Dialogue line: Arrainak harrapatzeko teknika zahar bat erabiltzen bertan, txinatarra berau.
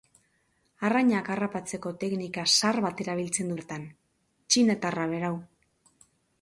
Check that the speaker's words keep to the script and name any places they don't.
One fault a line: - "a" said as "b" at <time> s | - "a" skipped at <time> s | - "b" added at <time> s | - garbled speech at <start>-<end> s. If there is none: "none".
none